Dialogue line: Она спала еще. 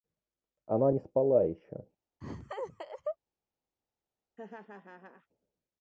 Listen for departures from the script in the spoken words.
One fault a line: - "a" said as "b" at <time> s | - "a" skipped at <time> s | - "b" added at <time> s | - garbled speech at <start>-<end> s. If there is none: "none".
- "не" added at 0.9 s